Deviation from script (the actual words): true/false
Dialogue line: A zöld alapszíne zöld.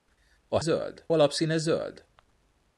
false